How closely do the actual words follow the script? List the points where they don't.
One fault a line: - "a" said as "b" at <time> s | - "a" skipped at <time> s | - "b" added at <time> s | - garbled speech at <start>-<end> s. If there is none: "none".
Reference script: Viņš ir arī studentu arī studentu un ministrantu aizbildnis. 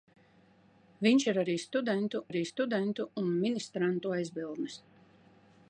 none